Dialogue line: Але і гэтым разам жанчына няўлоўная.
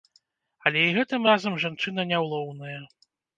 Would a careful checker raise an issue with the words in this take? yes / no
no